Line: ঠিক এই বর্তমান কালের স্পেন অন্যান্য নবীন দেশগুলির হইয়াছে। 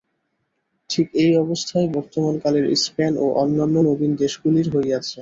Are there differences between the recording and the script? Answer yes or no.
yes